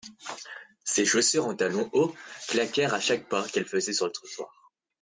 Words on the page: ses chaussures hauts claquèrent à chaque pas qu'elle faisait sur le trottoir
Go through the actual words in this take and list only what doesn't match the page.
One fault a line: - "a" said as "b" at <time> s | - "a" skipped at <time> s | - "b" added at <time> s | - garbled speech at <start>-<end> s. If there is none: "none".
- "en talons" added at 1.4 s